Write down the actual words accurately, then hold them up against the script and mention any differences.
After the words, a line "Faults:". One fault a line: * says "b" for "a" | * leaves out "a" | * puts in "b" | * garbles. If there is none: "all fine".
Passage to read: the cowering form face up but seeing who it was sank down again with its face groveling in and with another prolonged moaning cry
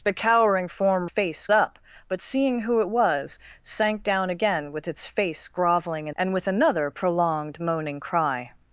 the cowering form face up but seeing who it was sank down again with its face groveling in and with another prolonged moaning cry
Faults:
all fine